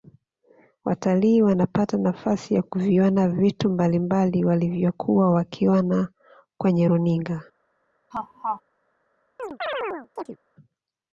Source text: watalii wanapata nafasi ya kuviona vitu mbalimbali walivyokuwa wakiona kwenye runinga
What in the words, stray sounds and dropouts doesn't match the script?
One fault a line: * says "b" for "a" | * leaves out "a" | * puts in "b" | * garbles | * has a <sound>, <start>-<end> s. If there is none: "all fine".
* has a laugh, 8.1-8.6 s
* has a chirp, 9.4-10.4 s